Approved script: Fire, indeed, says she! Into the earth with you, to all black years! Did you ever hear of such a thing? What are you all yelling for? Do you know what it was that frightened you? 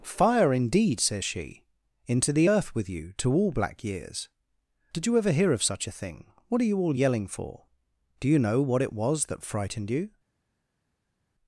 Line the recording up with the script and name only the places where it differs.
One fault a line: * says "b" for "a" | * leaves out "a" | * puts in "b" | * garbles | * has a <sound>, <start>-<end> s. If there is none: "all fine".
all fine